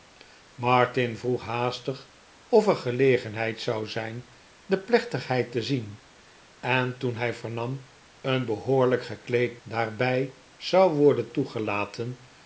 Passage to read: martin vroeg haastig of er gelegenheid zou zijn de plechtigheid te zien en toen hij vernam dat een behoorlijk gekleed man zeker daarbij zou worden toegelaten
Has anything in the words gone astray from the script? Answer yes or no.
yes